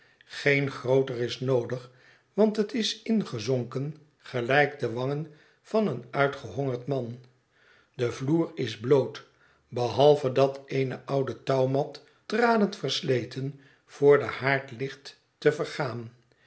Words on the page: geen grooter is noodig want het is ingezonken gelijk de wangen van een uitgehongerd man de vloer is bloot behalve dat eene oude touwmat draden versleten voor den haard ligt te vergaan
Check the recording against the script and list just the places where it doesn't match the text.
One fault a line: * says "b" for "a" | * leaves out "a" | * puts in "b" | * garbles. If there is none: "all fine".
all fine